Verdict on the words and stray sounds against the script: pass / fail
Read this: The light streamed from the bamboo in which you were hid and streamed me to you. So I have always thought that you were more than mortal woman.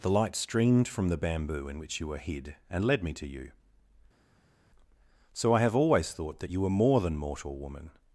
fail